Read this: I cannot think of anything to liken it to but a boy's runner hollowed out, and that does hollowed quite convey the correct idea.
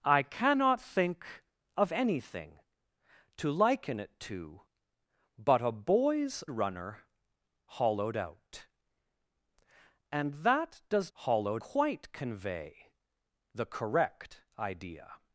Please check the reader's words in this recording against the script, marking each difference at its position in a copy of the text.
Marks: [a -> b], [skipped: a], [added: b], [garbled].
I cannot think of anything to liken it to but a boy's runner hollowed out, and that does hollowed quite convey the correct idea.